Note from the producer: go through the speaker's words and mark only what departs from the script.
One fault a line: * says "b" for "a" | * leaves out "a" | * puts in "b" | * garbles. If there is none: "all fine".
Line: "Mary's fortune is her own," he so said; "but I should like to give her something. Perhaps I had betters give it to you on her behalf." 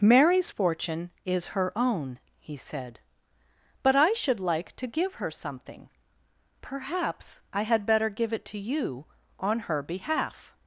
* leaves out "so"
* says "better" for "betters"